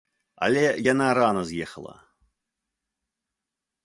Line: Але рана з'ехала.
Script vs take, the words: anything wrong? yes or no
yes